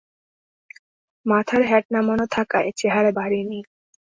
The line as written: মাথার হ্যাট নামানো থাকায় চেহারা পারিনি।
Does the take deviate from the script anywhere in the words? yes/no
no